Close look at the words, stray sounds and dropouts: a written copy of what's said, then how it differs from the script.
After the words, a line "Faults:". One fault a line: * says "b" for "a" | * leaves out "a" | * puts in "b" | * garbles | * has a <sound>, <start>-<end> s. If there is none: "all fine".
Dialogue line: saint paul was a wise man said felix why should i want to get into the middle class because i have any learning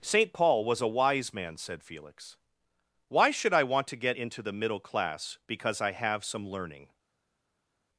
saint paul was a wise man said felix why should i want to get into the middle class because i have some learning
Faults:
* says "some" for "any"